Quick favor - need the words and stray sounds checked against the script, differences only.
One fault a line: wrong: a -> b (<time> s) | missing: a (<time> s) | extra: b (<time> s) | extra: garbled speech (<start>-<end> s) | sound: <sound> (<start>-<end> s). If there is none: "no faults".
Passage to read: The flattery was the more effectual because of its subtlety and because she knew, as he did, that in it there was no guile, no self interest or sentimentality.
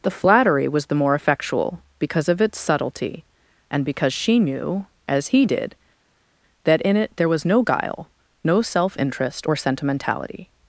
no faults